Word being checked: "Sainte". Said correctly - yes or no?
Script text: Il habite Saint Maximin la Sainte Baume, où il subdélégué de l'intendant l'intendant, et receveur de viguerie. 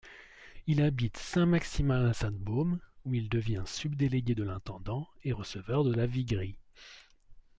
yes